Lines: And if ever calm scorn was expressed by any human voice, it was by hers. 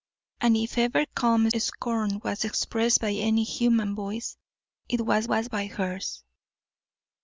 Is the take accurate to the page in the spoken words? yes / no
no